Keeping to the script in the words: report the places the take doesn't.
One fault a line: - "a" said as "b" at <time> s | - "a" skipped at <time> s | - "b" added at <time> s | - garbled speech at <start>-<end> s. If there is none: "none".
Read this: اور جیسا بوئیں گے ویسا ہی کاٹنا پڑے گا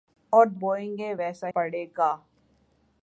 - "جیسا" skipped at 0.5 s
- "ہی کاٹنا" skipped at 1.5 s